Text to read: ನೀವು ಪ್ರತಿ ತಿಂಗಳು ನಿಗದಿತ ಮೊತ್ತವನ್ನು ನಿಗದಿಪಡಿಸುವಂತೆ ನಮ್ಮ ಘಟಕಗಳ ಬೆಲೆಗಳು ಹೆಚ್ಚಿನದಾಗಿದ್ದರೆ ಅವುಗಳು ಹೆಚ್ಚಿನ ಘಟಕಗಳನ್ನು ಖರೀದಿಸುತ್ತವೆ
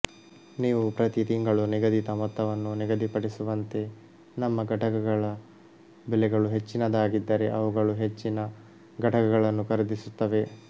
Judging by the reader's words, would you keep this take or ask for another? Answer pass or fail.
pass